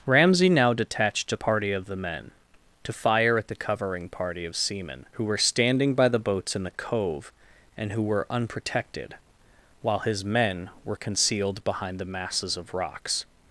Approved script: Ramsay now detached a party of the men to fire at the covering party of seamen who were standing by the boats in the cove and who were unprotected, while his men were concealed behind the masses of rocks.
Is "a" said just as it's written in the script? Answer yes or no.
yes